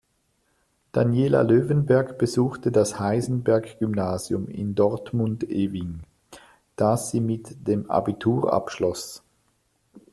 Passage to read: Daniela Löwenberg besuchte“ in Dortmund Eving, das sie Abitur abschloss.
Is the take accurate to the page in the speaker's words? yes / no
no